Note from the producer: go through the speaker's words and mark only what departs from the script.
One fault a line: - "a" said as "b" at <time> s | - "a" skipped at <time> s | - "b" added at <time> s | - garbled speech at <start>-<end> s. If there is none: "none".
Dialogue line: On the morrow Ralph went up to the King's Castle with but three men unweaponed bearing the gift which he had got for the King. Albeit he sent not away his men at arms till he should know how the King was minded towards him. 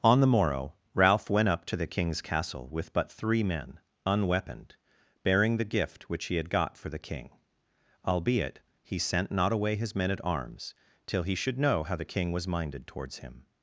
none